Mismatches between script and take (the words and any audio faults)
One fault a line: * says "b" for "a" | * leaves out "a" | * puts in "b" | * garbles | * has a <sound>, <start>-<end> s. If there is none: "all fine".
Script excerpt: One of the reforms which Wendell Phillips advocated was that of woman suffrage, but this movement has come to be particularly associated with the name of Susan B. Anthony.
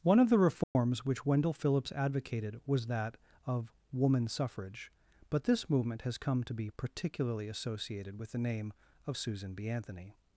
* has a dropout, 0.6-0.8 s